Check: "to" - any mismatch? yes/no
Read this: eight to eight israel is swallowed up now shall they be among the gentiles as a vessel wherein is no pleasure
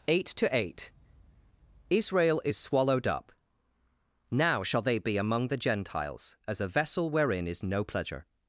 no